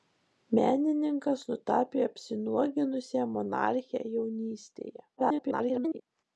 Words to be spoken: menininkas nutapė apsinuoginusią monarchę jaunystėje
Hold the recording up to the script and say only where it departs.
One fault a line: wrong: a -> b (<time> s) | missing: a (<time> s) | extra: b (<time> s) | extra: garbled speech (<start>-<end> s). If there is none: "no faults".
extra: garbled speech (5.2-6.0 s)